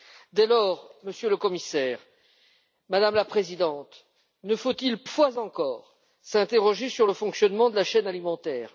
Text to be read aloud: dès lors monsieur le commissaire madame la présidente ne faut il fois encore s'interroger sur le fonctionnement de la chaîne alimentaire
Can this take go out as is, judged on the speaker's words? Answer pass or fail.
pass